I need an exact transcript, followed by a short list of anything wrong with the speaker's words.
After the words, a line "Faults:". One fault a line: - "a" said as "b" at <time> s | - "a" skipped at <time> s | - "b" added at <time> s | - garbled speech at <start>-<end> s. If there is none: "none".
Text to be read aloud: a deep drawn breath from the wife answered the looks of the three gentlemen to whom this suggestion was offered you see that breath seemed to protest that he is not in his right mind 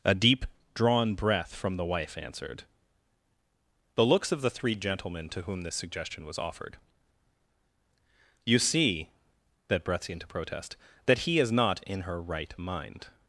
a deep drawn breath from the wife answered the looks of the three gentlemen to whom this suggestion was offered you see that breath seemed to protest that he is not in her right mind
Faults:
- "his" said as "her" at 12.0 s